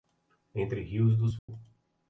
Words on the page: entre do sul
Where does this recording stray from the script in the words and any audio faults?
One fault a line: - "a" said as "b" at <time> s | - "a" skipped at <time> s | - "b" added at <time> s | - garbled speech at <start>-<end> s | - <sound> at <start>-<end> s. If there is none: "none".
- "rios" added at 0.8 s
- dropout at 1.4-1.5 s